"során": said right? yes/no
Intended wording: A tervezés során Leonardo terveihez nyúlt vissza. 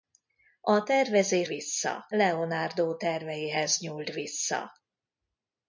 no